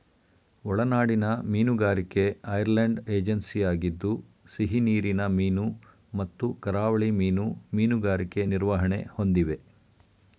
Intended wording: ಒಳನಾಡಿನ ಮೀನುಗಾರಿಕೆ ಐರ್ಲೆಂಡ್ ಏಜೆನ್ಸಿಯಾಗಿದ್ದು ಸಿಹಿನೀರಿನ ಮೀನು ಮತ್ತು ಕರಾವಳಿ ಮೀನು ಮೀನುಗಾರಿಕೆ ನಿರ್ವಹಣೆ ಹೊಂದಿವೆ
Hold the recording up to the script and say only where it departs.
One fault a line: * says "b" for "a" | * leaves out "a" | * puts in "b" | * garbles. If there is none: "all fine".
all fine